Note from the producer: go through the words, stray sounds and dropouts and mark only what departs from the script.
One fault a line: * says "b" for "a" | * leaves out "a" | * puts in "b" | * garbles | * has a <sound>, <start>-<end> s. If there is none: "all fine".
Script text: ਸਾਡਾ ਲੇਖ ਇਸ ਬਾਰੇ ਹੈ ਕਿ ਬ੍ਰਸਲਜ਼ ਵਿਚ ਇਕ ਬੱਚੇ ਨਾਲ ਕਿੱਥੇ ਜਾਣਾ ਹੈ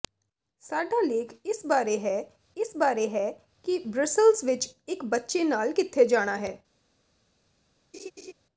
* puts in "ਇਸ ਬਾਰੇ ਹੈ"
* has a laugh, 7.9-8.3 s